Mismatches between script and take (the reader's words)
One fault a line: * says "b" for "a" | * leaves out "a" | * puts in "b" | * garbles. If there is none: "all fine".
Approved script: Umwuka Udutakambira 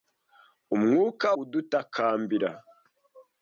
all fine